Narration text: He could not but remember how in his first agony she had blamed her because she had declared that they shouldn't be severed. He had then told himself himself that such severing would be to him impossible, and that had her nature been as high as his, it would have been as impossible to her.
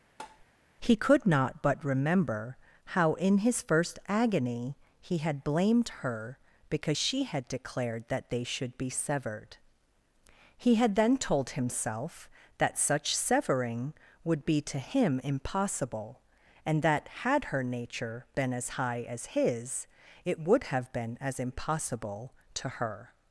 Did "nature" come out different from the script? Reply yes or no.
no